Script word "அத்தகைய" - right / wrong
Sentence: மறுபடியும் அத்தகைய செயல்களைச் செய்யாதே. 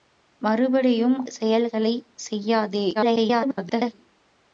wrong